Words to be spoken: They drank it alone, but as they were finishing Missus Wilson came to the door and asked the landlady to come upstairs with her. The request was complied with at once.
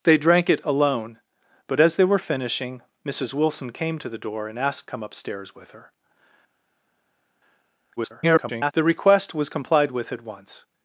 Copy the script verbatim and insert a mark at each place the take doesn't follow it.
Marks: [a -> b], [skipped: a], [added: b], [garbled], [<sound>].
They drank it alone, but as they were finishing Missus Wilson came to the door and asked [skipped: the landlady to] come upstairs with her. [garbled] The request was complied with at once.